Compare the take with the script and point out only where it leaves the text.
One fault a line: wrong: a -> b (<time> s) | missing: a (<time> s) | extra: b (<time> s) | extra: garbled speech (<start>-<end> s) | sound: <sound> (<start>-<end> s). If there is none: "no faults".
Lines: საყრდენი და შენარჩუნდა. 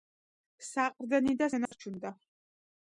sound: dropout (1.7-1.7 s)